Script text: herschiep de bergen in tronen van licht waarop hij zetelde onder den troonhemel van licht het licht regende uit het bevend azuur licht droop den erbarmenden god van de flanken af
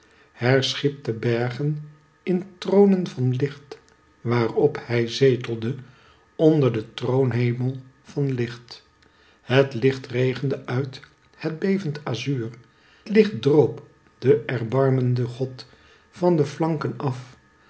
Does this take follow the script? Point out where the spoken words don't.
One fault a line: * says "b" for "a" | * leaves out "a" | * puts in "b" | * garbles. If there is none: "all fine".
all fine